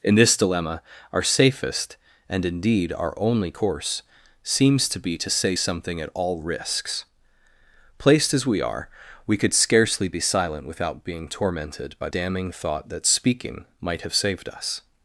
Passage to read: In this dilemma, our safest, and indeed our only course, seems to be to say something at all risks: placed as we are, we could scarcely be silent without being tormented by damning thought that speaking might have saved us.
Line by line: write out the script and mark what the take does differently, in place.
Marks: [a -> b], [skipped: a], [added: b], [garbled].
In this dilemma, our safest, and indeed our only course, seems to be to say something at all risks: placed as we are, we could scarcely be silent without being tormented by damning thought that speaking might have saved us.